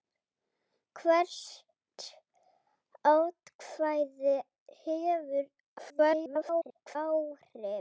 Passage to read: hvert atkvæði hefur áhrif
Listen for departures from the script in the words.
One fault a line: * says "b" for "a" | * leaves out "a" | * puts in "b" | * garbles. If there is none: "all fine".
* garbles